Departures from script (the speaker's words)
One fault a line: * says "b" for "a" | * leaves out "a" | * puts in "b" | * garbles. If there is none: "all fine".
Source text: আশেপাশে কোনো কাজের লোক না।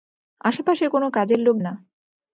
all fine